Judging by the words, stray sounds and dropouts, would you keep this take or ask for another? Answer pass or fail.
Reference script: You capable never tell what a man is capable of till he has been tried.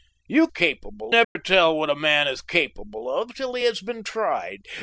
fail